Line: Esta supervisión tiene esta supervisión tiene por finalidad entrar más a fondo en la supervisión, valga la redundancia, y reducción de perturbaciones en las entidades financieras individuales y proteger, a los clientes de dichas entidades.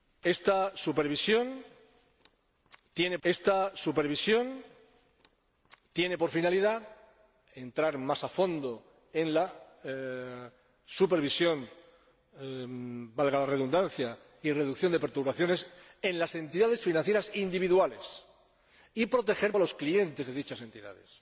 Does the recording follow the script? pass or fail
pass